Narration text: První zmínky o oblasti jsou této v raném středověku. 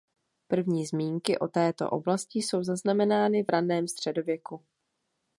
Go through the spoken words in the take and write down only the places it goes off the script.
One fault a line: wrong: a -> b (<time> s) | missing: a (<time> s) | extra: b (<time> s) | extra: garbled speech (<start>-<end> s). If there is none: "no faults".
extra: této (1.5 s)
wrong: této -> zaznamenány (2.6 s)